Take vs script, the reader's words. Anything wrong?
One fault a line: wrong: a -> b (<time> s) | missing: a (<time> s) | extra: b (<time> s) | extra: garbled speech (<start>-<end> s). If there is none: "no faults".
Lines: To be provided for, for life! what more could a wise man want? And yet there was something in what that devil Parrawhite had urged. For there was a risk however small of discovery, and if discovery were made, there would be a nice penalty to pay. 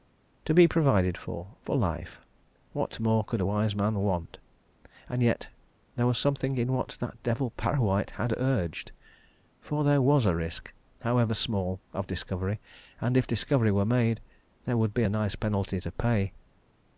no faults